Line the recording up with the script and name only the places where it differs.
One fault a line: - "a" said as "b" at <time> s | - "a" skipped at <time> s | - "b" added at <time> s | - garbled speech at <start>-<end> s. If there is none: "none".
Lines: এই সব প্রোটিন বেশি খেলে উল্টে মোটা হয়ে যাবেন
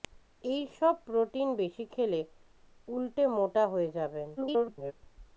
- garbled speech at 4.4-4.9 s